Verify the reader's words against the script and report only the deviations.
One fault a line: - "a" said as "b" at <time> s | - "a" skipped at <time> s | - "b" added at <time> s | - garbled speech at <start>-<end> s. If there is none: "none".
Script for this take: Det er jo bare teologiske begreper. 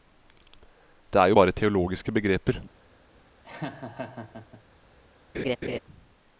none